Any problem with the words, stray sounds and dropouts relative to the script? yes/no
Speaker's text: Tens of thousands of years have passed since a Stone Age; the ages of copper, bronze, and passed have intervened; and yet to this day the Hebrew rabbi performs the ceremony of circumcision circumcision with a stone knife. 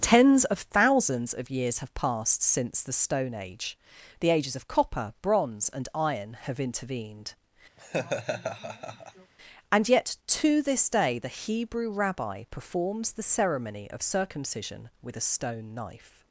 yes